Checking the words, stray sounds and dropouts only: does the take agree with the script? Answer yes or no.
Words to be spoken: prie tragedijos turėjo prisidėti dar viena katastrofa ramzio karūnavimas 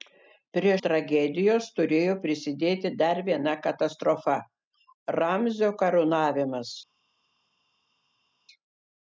yes